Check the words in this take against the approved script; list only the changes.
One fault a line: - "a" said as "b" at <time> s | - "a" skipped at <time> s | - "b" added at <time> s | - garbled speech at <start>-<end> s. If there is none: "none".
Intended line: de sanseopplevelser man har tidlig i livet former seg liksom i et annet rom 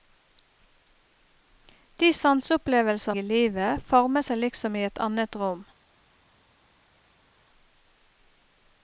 - "man har tidlig" skipped at 3.1 s